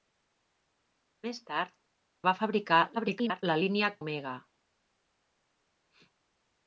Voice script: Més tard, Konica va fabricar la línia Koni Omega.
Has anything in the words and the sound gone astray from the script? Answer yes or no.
yes